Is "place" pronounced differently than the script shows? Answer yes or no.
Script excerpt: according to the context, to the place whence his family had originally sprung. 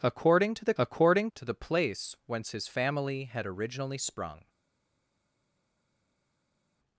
no